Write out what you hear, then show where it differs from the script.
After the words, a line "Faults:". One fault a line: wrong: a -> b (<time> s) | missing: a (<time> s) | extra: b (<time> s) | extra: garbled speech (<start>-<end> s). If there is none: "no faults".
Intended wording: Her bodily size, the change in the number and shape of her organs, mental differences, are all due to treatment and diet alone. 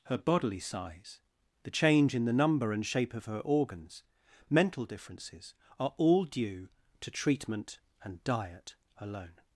Her bodily size, the change in the number and shape of her organs, mental differences, are all due to treatment and diet alone.
Faults:
no faults